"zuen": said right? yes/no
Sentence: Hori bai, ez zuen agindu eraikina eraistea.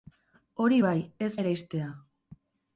no